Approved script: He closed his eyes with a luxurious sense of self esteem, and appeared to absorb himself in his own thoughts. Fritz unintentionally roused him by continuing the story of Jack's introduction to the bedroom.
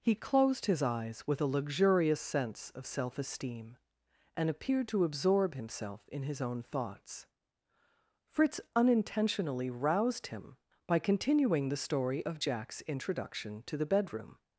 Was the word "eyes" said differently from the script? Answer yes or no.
no